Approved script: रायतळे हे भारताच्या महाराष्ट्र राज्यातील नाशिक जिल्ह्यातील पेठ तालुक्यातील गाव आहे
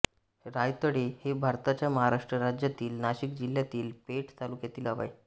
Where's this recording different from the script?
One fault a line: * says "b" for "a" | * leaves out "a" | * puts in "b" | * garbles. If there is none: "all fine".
all fine